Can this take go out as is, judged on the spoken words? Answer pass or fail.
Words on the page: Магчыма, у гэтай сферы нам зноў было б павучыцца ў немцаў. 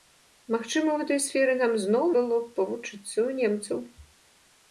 pass